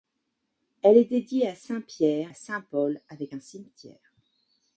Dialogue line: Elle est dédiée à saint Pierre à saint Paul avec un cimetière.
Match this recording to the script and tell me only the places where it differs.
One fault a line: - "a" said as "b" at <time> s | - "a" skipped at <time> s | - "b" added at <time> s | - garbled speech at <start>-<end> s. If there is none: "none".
none